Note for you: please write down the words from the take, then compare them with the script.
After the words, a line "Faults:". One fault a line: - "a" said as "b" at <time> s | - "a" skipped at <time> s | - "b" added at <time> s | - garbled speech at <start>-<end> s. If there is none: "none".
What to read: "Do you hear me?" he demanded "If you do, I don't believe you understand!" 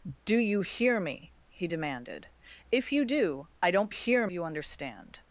"Do you hear me?" he demanded "If you do, I don't hear you understand!"
Faults:
- "believe" said as "hear" at 3.9 s